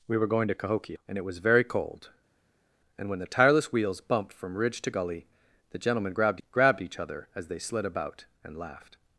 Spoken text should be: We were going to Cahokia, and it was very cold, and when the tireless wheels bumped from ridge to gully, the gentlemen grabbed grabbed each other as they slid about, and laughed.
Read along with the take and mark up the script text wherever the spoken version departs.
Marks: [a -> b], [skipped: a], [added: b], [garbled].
We were going to Cahokia, and it was very cold, and when the tireless wheels bumped from ridge to gully, the gentlemen grabbed grabbed each other as they slid about, and laughed.